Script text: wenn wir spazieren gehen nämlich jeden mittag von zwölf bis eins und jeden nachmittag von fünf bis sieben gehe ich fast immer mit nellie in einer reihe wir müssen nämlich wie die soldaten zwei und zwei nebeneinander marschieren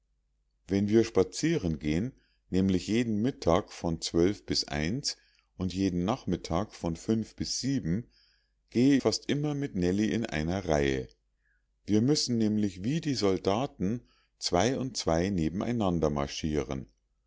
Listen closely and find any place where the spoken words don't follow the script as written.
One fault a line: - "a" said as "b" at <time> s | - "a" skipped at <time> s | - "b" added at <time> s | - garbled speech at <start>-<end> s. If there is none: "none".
- "ich" skipped at 9.0 s